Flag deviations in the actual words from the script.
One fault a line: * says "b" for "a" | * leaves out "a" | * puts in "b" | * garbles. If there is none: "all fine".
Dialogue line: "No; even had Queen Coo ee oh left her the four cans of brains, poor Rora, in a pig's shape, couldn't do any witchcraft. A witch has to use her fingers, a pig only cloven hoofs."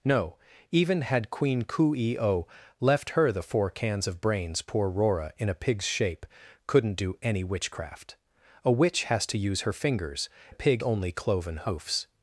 all fine